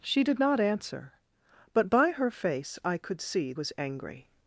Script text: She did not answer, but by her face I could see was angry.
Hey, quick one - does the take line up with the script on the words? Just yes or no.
yes